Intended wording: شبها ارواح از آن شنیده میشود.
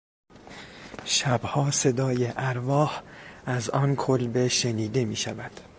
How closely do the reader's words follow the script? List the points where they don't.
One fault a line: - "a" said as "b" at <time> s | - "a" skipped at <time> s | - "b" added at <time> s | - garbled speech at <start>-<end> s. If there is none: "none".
- "صدای" added at 1.7 s
- "کلبه" added at 4.0 s